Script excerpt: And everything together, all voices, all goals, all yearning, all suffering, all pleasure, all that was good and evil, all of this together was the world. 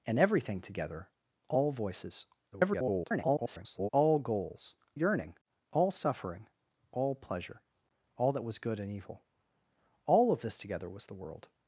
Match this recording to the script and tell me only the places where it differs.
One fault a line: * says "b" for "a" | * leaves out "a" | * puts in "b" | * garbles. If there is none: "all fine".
* garbles
* leaves out "all"